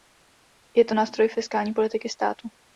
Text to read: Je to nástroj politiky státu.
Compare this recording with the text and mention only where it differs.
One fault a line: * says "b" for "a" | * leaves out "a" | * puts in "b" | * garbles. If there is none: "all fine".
* puts in "fiskální"